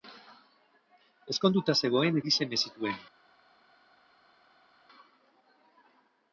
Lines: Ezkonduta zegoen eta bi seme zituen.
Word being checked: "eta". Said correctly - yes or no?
no